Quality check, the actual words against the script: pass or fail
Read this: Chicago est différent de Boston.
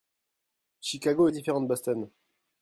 pass